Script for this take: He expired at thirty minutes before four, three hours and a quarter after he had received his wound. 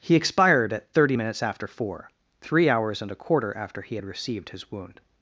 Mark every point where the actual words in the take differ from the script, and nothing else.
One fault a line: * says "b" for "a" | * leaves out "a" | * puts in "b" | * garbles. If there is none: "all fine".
* says "after" for "before"